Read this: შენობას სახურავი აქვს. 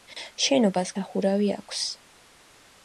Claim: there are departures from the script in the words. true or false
false